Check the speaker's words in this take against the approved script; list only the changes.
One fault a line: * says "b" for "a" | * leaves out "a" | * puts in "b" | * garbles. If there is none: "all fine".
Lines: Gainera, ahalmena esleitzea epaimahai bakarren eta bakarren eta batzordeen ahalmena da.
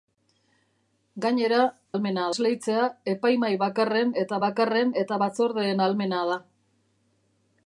all fine